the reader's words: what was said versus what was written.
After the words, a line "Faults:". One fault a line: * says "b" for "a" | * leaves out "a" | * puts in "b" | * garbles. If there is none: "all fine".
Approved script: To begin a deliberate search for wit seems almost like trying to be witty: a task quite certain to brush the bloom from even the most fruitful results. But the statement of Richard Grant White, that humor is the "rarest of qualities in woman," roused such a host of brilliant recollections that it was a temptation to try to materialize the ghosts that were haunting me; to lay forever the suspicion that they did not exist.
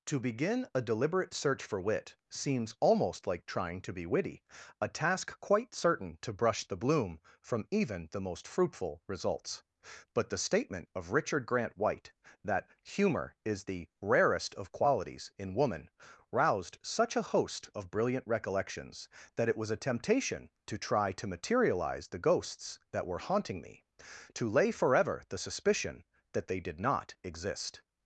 To begin a deliberate search for wit seems almost like trying to be witty: a task quite certain to brush the bloom from even the most fruitful results. But the statement of Richard Grant White, that humor is the "rarest of qualities in woman," roused such a host of brilliant recollections that it was a temptation to try to materialize the ghosts that were haunting me; to lay forever the suspicion that they did not exist.
Faults:
all fine